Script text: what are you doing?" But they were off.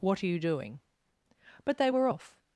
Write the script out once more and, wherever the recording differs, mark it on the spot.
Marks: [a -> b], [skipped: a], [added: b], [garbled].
what are you doing?" But they were off.